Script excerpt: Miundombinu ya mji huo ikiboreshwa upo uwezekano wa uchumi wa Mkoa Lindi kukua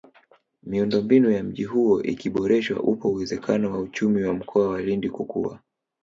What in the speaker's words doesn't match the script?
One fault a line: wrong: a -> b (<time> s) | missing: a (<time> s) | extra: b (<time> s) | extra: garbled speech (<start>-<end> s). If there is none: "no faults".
extra: wa (4.7 s)